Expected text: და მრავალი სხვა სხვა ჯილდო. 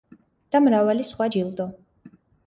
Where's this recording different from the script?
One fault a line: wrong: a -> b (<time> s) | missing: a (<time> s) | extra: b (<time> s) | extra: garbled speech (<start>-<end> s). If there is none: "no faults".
missing: სხვა (1.3 s)